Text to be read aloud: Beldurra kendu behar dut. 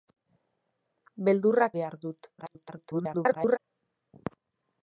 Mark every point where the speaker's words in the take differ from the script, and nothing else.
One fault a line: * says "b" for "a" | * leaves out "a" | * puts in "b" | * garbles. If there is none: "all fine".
* leaves out "kendu"
* garbles